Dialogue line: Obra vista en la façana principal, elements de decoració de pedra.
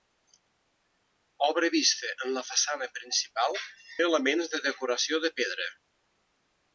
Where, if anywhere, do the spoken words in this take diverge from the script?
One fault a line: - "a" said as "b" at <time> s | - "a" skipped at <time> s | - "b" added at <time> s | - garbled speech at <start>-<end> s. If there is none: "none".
none